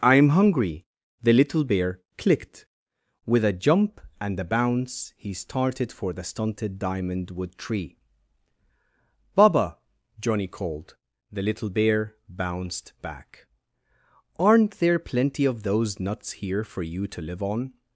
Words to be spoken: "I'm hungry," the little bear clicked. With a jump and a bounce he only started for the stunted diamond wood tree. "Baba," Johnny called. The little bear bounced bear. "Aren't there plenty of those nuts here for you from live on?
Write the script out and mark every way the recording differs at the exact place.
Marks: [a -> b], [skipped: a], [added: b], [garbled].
"I'm hungry," the little bear clicked. With a jump and a bounce he [skipped: only] started for the stunted diamond wood tree. "Baba," Johnny called. The little bear bounced [bear. -> back] "Aren't there plenty of those nuts here for you [from -> to] live on?